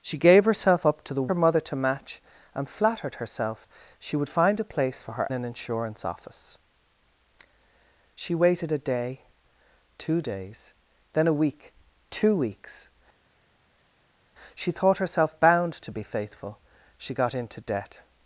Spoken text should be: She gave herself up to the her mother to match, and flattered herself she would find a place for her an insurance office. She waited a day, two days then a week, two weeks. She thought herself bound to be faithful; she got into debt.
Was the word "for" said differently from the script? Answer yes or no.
no